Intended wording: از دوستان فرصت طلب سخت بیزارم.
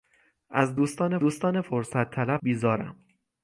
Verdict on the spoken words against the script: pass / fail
fail